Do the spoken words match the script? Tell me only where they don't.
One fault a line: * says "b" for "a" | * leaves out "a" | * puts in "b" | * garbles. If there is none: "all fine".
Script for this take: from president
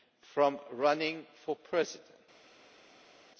* puts in "running for"